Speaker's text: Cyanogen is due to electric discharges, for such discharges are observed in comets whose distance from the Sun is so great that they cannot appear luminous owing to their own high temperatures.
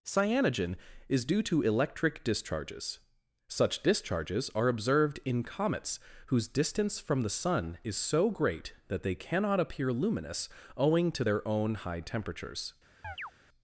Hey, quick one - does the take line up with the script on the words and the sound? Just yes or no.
no